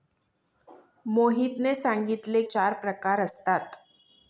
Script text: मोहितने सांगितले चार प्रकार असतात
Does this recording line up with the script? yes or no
yes